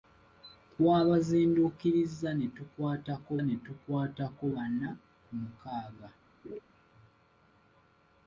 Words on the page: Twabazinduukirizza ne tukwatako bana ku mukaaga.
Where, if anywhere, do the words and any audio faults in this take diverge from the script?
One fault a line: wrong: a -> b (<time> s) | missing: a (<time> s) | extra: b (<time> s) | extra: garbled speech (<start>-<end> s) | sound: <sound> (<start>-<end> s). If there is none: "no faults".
extra: ne tukwatako (3.5 s)
sound: laugh (6.4-6.6 s)